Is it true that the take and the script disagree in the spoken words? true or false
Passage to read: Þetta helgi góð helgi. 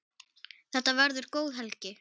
true